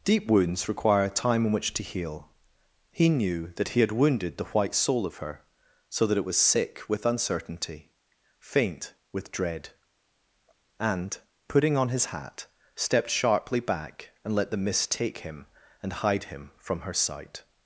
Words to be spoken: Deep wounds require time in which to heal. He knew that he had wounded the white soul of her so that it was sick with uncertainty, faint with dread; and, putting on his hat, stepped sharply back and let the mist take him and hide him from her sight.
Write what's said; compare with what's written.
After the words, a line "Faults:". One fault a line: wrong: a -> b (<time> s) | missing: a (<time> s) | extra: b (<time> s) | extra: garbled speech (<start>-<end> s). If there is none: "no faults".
Deep wounds require time in which to heal. He knew that he had wounded the white soul of her so that it was sick with uncertainty, faint with dread; and, putting on his hat, stepped sharply back and let the mist take him and hide him from her sight.
Faults:
no faults